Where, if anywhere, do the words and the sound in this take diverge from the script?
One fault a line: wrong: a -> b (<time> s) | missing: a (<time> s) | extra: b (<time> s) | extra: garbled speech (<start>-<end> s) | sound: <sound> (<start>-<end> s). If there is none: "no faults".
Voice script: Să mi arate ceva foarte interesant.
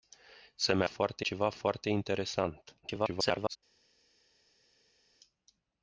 wrong: arate -> foarte (0.8 s)
extra: garbled speech (2.8-3.6 s)